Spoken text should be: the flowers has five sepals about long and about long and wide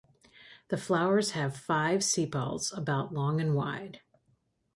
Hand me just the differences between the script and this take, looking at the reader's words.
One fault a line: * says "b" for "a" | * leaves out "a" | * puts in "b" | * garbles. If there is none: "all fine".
* says "have" for "has"
* leaves out "about long and"